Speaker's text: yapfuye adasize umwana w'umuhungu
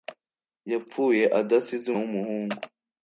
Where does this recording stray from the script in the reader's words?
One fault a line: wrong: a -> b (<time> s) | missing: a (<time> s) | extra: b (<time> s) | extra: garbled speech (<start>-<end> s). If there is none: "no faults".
missing: umwana (1.9 s)